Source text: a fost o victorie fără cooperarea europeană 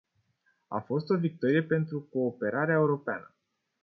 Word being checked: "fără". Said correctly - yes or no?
no